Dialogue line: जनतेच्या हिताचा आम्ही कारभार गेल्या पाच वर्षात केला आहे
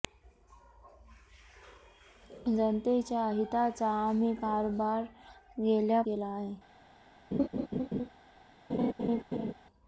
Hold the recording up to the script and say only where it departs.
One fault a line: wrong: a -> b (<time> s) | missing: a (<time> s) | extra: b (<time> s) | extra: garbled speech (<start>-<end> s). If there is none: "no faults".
missing: पाच वर्षात (6.0 s)